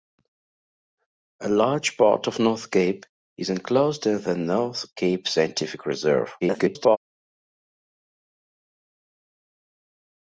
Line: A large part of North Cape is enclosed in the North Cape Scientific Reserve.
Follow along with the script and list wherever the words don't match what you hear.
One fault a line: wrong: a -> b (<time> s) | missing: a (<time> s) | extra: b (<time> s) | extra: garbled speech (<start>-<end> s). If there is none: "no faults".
extra: garbled speech (6.4-7.0 s)